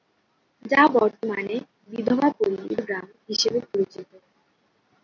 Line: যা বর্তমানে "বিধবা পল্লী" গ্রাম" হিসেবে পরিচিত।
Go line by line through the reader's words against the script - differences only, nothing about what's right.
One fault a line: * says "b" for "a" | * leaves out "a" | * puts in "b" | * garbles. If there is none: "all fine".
all fine